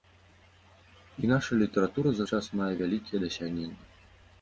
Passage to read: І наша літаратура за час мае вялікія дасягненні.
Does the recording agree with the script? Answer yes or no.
yes